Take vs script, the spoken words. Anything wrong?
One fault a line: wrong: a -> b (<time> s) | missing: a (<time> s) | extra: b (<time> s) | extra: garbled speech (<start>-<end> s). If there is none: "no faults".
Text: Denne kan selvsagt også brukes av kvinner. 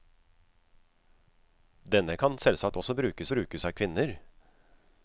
extra: brukes (3.3 s)